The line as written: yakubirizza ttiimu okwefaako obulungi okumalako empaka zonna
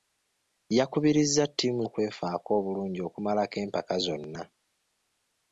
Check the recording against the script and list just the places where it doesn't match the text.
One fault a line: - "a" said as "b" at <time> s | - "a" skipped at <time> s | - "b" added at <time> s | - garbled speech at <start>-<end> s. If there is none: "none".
none